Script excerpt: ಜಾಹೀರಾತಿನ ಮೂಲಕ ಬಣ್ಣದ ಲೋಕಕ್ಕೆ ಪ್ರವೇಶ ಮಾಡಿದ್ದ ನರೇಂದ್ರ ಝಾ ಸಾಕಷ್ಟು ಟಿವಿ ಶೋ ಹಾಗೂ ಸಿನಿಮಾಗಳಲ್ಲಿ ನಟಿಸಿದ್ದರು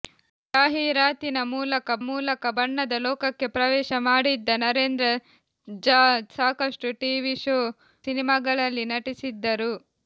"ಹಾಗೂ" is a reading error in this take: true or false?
true